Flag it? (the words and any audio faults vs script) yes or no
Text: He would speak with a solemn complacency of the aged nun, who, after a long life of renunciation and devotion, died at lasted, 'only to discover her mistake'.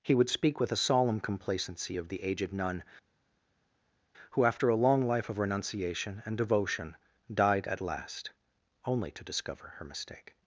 yes